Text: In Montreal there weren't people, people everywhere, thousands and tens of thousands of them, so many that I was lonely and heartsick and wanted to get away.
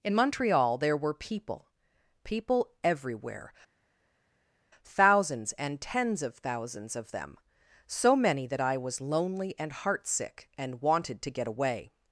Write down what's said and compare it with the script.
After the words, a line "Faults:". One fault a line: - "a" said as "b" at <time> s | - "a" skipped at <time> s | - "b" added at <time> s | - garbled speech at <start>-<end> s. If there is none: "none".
In Montreal there were people, people everywhere, thousands and tens of thousands of them, so many that I was lonely and heartsick and wanted to get away.
Faults:
- "weren't" said as "were" at 1.0 s